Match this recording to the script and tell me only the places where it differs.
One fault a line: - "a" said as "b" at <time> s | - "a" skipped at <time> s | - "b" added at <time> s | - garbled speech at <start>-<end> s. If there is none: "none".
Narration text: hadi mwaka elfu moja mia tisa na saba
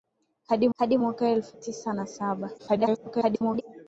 - "hadi" added at 0.8 s
- "moja mia" skipped at 1.6 s
- garbled speech at 2.6-3.6 s